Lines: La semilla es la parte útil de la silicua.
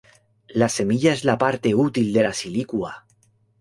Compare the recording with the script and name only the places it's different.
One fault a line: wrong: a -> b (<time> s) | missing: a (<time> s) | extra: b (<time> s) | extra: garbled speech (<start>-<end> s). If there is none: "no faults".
no faults